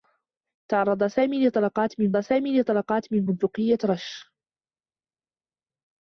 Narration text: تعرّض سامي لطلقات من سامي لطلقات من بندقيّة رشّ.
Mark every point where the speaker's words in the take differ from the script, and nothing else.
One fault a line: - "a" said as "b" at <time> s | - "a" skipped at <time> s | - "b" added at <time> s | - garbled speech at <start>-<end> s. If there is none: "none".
none